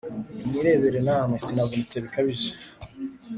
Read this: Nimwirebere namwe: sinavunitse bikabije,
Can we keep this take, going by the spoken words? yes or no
yes